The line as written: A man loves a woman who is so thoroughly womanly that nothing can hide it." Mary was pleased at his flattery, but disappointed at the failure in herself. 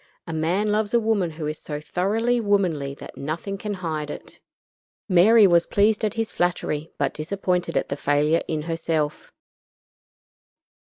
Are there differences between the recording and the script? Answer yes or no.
no